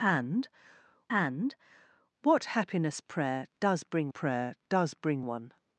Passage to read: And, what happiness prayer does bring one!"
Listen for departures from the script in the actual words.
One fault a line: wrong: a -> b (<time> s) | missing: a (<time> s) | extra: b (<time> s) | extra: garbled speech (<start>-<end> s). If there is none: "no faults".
extra: and (1.1 s)
extra: prayer does bring (4.1 s)